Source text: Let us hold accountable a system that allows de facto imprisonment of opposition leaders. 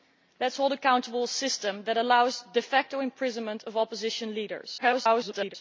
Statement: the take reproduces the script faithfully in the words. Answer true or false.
false